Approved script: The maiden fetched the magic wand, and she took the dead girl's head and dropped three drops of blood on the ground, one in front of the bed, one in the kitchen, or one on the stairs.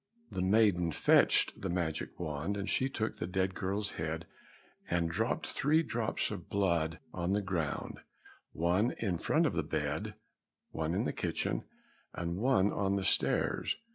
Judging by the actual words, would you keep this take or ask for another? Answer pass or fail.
fail